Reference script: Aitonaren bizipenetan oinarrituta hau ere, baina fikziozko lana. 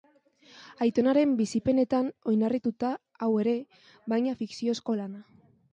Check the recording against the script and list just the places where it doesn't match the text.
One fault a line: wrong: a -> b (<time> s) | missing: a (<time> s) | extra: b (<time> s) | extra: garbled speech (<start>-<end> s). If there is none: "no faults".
no faults